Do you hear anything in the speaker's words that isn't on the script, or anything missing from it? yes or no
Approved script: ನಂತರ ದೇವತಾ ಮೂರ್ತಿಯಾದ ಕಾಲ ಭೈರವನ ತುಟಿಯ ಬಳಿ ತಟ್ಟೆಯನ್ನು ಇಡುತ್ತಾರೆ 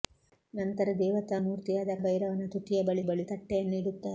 yes